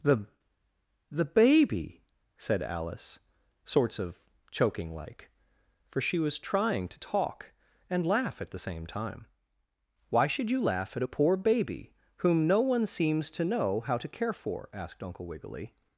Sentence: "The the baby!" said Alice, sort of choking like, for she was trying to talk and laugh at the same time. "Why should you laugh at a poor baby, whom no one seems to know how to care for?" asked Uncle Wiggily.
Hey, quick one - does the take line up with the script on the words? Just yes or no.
no